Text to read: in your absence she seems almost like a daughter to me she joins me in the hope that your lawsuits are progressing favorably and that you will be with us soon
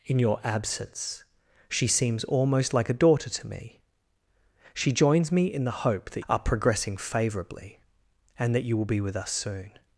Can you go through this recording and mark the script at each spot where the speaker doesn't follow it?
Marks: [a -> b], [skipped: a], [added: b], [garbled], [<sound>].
in your absence she seems almost like a daughter to me she joins me in the hope that [skipped: your lawsuits] are progressing favorably and that you will be with us soon